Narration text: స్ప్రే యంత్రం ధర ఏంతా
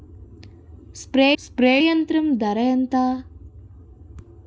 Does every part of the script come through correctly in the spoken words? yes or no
no